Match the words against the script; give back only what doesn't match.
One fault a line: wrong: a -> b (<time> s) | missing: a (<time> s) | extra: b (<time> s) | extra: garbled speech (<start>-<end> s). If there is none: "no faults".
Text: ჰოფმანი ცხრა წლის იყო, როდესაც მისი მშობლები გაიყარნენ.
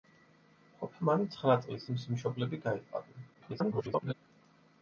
missing: იყო როდესაც (1.9 s)
extra: garbled speech (3.3-4.1 s)